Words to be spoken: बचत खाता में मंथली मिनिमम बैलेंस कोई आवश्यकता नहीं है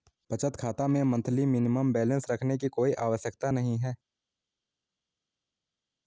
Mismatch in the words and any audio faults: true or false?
true